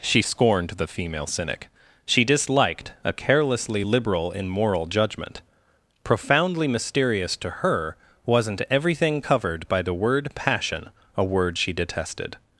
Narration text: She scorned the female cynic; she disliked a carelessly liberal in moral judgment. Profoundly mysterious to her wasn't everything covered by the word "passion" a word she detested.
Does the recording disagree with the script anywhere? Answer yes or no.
no